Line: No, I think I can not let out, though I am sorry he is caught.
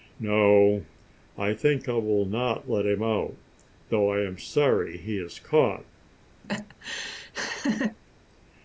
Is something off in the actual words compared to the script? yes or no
yes